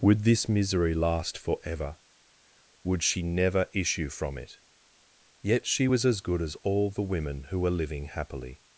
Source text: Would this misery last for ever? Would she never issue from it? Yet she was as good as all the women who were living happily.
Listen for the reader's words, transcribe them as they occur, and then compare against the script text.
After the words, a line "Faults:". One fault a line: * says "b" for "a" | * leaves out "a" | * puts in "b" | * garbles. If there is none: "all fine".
Would this misery last for ever? Would she never issue from it? Yet she was as good as all the women who were living happily.
Faults:
all fine